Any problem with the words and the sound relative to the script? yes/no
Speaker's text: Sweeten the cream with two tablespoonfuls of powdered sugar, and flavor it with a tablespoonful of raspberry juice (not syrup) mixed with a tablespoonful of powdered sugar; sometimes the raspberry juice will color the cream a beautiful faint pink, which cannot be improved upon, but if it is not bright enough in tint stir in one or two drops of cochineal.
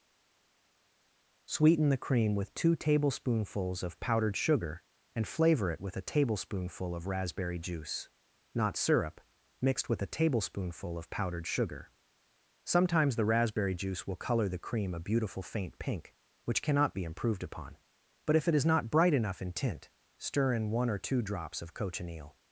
no